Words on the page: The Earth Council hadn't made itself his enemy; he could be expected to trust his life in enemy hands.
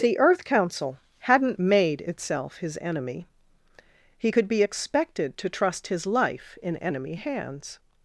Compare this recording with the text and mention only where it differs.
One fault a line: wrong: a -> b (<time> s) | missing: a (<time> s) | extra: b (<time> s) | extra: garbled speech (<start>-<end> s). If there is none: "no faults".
no faults